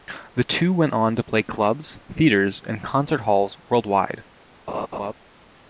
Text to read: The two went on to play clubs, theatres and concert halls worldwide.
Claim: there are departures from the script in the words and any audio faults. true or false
true